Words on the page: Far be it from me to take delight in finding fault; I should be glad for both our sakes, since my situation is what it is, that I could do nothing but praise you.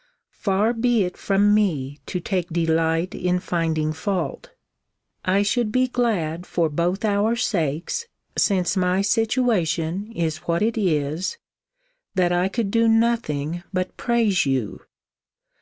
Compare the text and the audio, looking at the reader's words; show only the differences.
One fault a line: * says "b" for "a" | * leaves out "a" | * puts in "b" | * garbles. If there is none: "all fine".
all fine